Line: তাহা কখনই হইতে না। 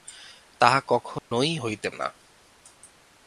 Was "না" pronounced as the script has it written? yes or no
yes